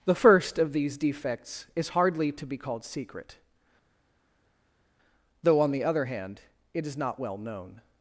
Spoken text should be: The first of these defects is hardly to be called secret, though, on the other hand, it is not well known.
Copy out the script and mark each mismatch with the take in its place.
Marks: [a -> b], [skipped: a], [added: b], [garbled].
The first of these defects is hardly to be called secret, though, on the other hand, it is not well known.